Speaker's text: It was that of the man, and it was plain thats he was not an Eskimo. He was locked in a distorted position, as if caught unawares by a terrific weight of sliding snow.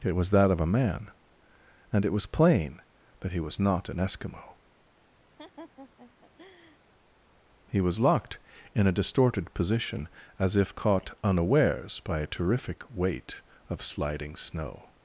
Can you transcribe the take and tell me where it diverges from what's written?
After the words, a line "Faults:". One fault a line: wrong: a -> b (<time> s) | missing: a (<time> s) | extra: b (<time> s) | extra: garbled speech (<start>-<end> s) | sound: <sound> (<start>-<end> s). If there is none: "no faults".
It was that of a man, and it was plain that he was not an Eskimo. He was locked in a distorted position, as if caught unawares by a terrific weight of sliding snow.
Faults:
wrong: the -> a (0.6 s)
wrong: thats -> that (3.2 s)
sound: laugh (5.4-6.8 s)